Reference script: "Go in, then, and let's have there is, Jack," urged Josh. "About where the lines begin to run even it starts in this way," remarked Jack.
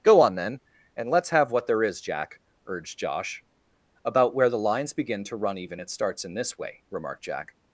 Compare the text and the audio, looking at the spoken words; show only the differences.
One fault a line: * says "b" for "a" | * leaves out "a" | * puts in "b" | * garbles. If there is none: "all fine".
* says "on" for "in"
* puts in "what"